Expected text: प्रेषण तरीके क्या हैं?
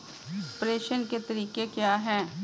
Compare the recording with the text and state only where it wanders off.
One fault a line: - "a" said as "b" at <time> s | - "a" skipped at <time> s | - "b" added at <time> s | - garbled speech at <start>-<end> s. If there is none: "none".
- "के" added at 1.1 s